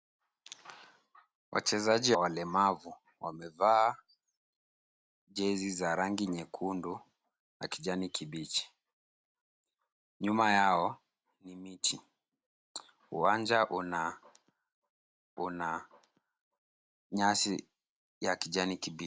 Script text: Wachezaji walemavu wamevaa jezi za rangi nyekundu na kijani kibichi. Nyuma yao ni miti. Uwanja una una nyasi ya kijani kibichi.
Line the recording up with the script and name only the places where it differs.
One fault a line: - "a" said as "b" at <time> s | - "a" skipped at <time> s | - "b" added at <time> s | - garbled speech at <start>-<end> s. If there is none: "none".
none